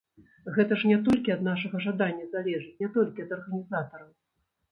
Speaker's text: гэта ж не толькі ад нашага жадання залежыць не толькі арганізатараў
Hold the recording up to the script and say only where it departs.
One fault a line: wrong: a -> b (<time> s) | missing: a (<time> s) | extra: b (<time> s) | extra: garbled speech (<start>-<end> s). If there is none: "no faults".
extra: ад (3.3 s)